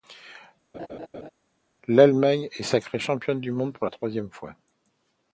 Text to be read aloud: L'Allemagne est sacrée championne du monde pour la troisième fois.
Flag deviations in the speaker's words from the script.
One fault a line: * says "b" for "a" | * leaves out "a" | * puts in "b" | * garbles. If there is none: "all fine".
all fine